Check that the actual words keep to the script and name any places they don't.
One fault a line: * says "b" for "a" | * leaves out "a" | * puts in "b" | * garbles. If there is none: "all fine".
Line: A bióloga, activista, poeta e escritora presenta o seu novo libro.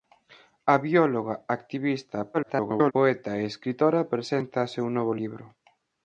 * garbles